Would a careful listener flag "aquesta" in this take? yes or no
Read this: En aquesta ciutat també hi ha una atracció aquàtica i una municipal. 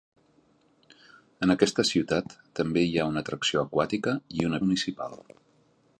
no